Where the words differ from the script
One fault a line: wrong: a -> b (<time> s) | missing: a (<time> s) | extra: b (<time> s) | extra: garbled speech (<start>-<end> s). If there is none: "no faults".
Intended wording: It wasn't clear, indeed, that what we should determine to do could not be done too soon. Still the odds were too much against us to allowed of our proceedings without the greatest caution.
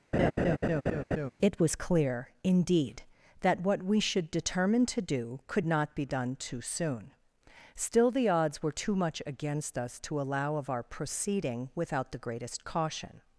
wrong: wasn't -> was (1.6 s)
wrong: allowed -> allow (10.2 s)
wrong: proceedings -> proceeding (10.8 s)